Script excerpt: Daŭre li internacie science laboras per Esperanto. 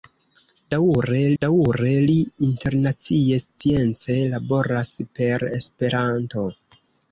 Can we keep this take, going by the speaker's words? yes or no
no